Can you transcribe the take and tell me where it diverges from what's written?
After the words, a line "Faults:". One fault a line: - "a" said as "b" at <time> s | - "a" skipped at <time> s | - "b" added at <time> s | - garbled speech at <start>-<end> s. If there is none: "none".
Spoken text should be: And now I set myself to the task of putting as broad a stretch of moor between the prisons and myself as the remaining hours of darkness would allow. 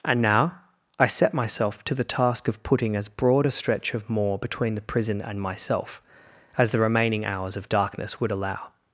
And now I set myself to the task of putting as broad a stretch of moor between the prison and myself as the remaining hours of darkness would allow.
Faults:
- "prisons" said as "prison" at 4.8 s